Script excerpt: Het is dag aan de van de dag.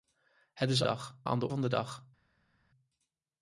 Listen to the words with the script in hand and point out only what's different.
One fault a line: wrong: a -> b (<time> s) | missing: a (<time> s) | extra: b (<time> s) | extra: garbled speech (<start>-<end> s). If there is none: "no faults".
no faults